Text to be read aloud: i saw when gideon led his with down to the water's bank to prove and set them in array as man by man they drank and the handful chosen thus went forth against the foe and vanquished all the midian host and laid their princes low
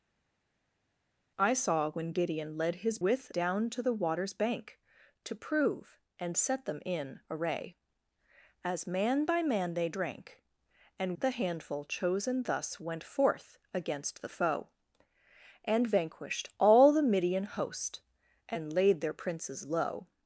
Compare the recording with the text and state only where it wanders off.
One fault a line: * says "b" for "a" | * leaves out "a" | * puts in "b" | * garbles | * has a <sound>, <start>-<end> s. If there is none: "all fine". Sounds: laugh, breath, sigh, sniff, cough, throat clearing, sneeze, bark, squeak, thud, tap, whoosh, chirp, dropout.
all fine